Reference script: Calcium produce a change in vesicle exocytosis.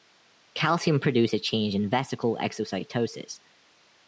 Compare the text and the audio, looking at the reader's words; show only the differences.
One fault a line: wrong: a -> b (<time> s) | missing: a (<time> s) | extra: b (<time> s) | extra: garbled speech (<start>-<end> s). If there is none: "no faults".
no faults